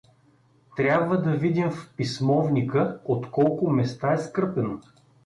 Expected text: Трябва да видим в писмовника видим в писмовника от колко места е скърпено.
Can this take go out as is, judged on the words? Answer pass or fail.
fail